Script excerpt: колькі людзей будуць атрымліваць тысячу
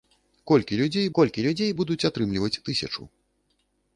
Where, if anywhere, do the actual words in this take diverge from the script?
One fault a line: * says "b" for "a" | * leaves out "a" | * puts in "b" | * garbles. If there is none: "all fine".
* puts in "колькі людзей"